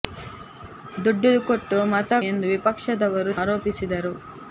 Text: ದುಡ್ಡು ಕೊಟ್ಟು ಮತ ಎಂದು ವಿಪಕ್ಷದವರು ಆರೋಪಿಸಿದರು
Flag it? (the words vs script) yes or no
no